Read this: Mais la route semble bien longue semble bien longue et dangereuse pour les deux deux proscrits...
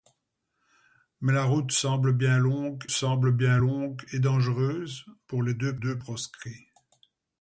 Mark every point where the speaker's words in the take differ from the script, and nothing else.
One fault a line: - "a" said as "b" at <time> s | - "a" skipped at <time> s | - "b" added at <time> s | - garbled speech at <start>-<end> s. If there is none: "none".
none